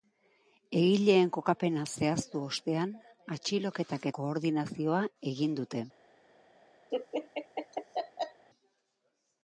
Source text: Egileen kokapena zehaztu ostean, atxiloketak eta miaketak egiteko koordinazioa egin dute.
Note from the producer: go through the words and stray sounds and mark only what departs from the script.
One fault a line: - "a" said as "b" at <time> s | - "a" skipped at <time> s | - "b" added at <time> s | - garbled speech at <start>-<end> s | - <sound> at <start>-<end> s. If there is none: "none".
- "eta miaketak egiteko" skipped at 4.1 s
- laugh at 6.9-8.5 s